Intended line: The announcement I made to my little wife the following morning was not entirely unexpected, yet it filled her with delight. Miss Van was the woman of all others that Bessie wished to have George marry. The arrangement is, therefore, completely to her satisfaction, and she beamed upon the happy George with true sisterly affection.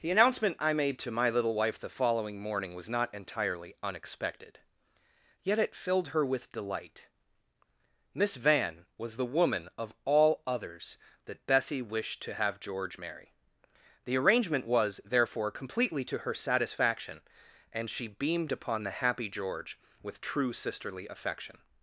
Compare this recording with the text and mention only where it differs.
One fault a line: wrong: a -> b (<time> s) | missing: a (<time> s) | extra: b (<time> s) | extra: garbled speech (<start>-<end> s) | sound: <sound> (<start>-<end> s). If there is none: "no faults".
wrong: is -> was (14.7 s)